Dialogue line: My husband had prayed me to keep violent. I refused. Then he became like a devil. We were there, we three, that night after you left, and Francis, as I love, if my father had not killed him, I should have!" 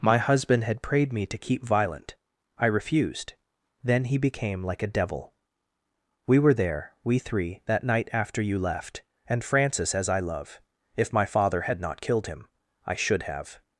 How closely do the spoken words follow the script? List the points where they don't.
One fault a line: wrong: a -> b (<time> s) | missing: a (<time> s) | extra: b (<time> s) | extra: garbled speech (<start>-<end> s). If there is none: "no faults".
no faults